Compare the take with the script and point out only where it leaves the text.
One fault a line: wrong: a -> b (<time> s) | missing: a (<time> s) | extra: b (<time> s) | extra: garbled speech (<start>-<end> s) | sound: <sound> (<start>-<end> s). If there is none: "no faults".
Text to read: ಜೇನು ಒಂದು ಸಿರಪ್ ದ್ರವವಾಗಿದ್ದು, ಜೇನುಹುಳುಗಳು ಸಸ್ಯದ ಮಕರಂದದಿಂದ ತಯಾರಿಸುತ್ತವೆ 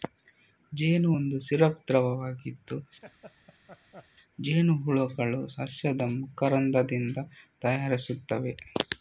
sound: laugh (3.0-4.1 s)